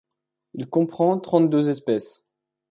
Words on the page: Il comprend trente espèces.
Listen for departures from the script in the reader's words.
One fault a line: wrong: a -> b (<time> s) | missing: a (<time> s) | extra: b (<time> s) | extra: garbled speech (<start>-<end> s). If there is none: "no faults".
extra: deux (1.5 s)